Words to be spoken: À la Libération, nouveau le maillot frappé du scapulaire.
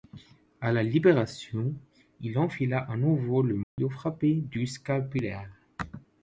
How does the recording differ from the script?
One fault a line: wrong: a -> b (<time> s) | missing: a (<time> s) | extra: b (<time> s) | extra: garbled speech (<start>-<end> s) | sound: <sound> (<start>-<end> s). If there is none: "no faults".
extra: il enfila à (2.2 s)
sound: dropout (3.6-3.8 s)